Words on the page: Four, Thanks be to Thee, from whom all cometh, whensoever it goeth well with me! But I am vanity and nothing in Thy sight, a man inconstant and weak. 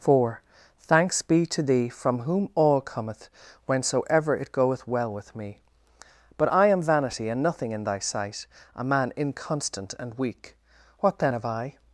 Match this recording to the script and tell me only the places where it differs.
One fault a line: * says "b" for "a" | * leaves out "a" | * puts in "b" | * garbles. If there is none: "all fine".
* puts in "What then have I"